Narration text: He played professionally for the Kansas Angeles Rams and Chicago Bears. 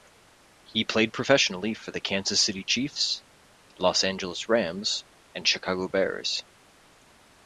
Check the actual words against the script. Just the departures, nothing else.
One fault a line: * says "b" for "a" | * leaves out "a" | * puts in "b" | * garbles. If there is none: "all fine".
* puts in "City Chiefs Los"